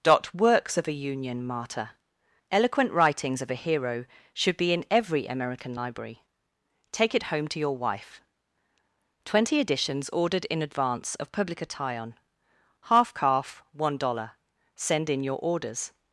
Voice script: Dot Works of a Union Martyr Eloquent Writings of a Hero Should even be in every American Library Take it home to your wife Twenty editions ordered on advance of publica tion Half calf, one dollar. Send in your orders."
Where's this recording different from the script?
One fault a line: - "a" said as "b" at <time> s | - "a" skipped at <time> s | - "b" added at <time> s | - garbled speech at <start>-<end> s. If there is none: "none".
- "even" skipped at 4.6 s
- "on" said as "in" at 10.4 s